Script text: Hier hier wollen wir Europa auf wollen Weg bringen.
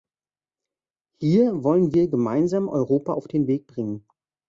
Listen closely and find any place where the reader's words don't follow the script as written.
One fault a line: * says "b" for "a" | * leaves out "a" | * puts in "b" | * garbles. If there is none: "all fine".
* leaves out "hier"
* puts in "gemeinsam"
* says "den" for "wollen"